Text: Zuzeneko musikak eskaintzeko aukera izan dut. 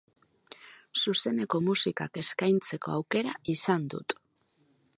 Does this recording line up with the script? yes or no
yes